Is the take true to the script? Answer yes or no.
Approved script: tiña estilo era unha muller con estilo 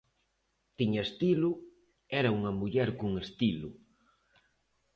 yes